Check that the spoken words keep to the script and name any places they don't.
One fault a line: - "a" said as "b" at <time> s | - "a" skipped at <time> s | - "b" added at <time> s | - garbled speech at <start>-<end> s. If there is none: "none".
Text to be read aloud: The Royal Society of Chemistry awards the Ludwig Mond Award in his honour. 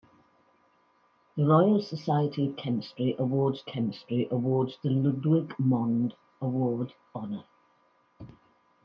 - "Chemistry awards" added at 3.6 s
- "in his" skipped at 6.9 s